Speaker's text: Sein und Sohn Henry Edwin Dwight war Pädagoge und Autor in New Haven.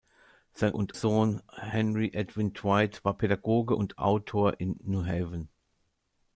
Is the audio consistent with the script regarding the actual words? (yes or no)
yes